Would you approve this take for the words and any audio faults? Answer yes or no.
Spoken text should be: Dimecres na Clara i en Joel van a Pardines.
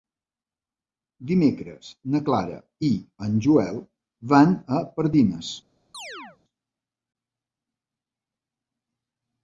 no